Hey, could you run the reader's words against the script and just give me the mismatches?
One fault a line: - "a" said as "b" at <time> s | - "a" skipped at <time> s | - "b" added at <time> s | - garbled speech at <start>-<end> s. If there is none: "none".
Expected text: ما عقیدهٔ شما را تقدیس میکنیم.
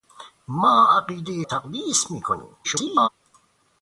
- "شما را" skipped at 1.4 s
- garbled speech at 2.6-3.1 s